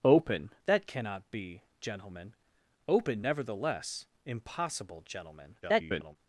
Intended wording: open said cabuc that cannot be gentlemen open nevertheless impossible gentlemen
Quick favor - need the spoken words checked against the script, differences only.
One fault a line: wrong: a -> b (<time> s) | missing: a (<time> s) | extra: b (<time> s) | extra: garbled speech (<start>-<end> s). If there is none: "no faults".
missing: said cabuc (0.5 s)
extra: garbled speech (5.6-6.2 s)